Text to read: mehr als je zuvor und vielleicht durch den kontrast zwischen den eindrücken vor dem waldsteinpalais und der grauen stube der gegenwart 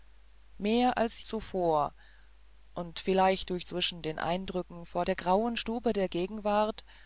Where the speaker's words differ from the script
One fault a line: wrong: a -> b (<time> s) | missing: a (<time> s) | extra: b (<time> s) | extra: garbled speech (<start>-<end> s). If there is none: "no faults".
missing: je (1.2 s)
missing: den kontrast (3.7 s)
missing: dem waldsteinpalais und (5.1 s)